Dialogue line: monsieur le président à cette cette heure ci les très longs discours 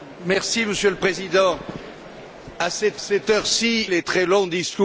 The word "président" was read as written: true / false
true